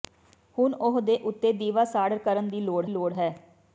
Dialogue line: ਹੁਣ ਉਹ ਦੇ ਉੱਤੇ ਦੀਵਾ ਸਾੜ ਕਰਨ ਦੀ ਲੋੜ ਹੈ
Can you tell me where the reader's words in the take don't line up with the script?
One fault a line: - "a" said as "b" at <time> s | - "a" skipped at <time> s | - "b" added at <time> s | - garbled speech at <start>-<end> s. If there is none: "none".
- "ਲੋੜ" added at 2.9 s